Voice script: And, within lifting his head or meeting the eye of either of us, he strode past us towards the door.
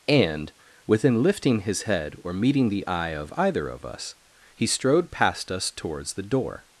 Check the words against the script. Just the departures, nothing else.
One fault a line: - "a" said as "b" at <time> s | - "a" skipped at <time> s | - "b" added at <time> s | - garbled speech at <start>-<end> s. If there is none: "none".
none